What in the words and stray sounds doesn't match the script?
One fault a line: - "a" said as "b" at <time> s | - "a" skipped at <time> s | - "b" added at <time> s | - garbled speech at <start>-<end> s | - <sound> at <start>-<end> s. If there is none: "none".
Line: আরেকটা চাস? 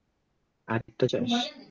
- dropout at 0.8-0.9 s